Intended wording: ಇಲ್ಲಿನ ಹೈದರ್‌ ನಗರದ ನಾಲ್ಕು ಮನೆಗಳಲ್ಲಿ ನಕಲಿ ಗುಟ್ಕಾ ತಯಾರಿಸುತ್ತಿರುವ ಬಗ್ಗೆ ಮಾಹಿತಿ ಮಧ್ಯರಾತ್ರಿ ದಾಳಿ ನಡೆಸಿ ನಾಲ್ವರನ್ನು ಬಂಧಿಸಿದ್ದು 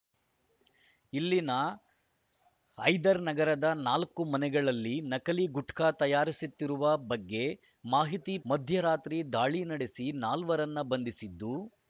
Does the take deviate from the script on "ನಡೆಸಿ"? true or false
false